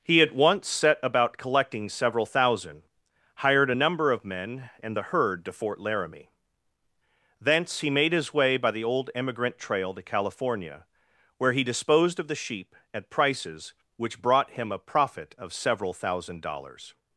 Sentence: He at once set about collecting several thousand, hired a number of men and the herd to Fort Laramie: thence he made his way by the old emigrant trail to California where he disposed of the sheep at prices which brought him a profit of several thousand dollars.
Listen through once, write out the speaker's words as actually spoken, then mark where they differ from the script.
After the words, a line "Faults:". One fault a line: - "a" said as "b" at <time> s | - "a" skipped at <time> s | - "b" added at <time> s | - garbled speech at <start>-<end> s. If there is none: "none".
He at once set about collecting several thousand, hired a number of men and the herd to Fort Laramie: thence he made his way by the old emigrant trail to California where he disposed of the sheep at prices which brought him a profit of several thousand dollars.
Faults:
none